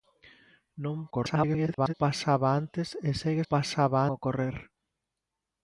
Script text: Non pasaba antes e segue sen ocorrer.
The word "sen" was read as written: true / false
false